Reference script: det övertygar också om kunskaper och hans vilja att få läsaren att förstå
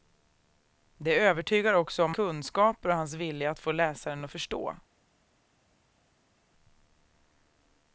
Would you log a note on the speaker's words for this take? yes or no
no